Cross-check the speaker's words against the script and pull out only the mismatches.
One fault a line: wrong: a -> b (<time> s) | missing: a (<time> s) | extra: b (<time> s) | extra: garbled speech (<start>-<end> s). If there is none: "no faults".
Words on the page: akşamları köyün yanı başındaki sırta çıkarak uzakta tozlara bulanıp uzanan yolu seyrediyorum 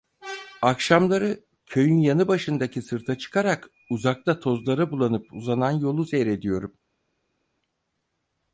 no faults